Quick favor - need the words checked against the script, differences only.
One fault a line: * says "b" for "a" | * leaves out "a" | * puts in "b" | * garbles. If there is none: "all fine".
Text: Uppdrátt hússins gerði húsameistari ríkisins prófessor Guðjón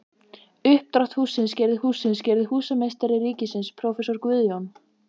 * puts in "hússins gerði"